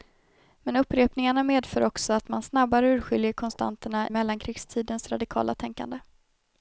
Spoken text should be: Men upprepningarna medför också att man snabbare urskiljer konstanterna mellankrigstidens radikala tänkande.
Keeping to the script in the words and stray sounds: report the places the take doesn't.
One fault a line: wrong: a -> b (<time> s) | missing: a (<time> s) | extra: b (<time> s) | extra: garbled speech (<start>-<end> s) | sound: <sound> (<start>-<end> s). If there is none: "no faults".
no faults